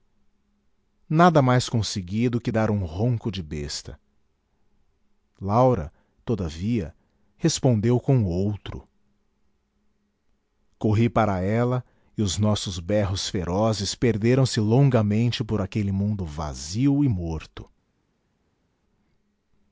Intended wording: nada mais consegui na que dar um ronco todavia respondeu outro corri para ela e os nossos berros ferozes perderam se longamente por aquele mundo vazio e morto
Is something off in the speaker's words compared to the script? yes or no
yes